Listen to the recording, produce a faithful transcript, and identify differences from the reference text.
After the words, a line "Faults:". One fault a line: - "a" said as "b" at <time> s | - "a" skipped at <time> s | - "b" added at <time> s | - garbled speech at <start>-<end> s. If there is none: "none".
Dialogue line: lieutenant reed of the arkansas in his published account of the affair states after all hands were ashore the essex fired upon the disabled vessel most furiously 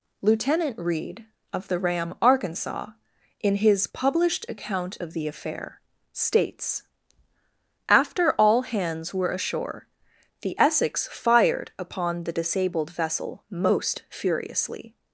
lieutenant reed of the ram arkansas in his published account of the affair states after all hands were ashore the essex fired upon the disabled vessel most furiously
Faults:
- "ram" added at 1.8 s